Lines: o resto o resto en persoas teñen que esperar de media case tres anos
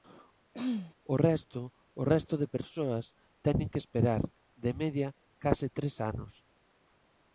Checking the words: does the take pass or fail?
fail